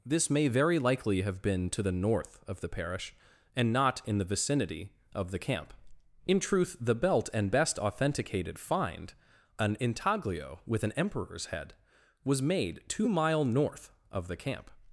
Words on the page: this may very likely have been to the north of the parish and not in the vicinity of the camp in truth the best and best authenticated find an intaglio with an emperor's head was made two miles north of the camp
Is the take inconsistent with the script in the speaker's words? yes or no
yes